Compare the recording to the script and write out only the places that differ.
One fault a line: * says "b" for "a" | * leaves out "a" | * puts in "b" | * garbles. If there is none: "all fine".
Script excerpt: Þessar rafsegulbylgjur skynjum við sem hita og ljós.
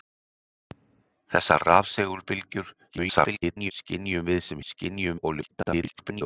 * garbles
* says "skynjum" for "hita"
* garbles